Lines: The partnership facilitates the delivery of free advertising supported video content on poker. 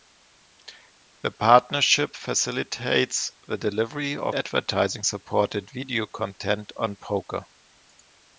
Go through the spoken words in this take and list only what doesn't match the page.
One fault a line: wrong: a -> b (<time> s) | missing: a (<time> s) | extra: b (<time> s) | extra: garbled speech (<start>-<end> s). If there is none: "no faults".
missing: free (4.3 s)